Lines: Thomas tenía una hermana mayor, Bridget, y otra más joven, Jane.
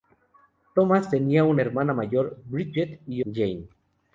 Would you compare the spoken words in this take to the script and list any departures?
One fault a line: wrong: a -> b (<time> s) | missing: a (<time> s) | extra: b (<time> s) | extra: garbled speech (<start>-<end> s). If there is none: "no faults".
missing: otra más joven (3.2 s)